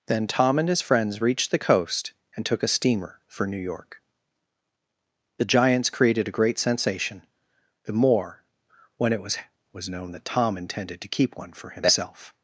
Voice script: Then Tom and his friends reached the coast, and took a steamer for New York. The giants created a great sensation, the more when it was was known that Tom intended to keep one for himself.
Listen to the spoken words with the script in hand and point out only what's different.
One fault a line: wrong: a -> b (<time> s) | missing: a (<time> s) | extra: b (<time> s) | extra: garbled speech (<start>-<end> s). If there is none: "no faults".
no faults